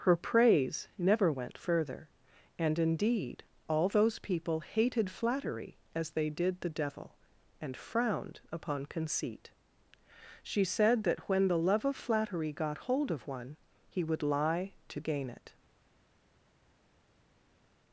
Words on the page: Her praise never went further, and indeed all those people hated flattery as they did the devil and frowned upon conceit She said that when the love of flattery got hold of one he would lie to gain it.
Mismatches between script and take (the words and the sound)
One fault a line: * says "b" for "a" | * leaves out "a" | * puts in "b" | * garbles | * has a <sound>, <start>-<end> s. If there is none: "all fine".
all fine